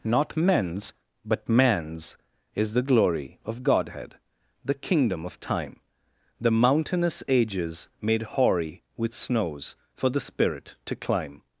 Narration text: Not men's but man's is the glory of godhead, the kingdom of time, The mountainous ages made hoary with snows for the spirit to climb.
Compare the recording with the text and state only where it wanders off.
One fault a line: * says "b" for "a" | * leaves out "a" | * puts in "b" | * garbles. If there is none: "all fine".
all fine